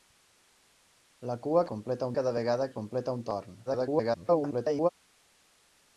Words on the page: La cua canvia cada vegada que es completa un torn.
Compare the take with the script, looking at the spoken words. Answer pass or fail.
fail